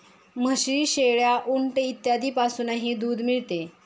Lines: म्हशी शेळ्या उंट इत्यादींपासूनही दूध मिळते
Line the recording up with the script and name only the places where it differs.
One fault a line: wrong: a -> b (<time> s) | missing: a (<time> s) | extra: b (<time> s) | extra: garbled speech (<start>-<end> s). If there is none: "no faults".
no faults